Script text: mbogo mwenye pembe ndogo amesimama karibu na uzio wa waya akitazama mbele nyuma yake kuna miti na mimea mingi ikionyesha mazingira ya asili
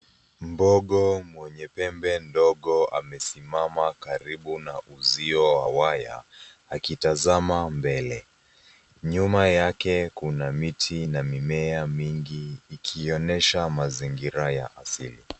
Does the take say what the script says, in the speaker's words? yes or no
yes